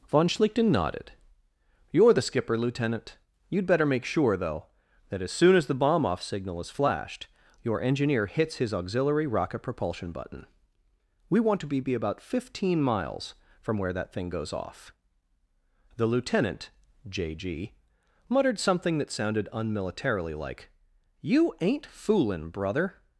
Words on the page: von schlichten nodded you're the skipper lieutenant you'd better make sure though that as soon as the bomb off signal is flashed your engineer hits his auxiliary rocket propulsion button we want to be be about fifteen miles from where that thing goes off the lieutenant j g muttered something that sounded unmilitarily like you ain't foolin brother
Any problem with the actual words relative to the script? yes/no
no